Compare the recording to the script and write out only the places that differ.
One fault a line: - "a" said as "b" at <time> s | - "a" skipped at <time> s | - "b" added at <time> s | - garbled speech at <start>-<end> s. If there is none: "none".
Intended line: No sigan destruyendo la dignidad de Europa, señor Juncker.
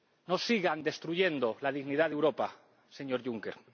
none